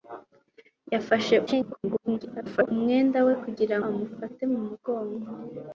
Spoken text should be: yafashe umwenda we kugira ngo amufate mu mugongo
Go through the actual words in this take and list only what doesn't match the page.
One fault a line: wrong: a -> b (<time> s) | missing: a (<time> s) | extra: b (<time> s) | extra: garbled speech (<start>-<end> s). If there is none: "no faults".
extra: garbled speech (1.5-2.7 s)
missing: ngo (3.8 s)